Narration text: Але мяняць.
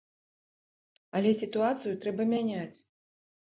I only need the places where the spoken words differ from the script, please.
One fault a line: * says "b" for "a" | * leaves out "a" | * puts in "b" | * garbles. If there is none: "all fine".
* puts in "сітуацыю трэба"